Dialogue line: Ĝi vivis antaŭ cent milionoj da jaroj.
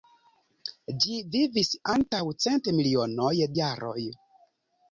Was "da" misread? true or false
true